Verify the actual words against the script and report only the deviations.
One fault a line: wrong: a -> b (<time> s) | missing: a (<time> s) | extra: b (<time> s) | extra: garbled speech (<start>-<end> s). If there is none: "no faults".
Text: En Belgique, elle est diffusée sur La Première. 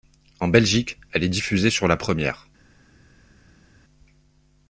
no faults